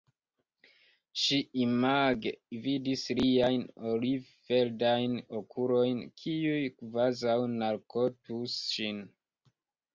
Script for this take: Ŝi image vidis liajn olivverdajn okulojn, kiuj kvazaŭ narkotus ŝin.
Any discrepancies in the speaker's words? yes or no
no